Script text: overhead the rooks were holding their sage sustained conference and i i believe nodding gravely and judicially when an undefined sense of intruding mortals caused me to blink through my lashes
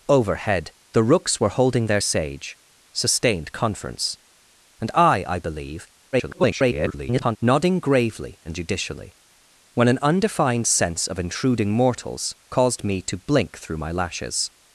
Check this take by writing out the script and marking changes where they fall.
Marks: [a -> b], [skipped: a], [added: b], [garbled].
overhead the rooks were holding their sage sustained conference and i i believe [garbled] nodding gravely and judicially when an undefined sense of intruding mortals caused me to blink through my lashes